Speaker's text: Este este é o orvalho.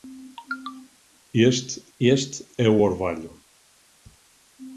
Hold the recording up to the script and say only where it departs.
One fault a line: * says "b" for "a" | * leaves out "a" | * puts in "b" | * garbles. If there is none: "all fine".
all fine